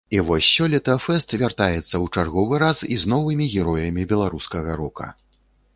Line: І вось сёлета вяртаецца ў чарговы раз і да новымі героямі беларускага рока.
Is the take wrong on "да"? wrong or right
wrong